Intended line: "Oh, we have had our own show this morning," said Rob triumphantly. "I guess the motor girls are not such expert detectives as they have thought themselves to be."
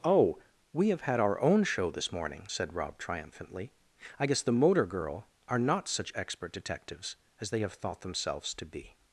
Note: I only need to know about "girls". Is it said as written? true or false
false